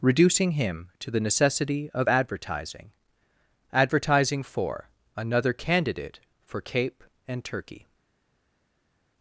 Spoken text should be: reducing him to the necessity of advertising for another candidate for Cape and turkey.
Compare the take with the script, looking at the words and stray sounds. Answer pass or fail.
fail